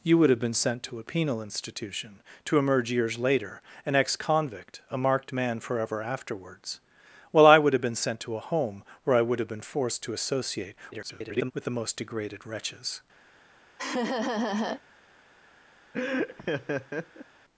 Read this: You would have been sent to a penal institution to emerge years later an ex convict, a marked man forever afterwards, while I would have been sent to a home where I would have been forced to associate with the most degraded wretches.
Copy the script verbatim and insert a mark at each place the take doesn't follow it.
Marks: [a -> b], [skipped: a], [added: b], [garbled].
You would have been sent to a penal institution to emerge years later an ex convict, a marked man forever afterwards, while I would have been sent to a home where I would have been forced to associate [garbled] with the most degraded wretches.